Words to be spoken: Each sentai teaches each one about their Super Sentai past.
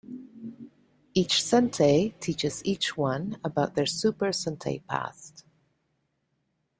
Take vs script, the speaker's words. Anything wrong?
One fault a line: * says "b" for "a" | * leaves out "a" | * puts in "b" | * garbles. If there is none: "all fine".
all fine